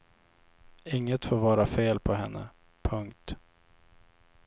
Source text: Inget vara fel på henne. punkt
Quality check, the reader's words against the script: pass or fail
fail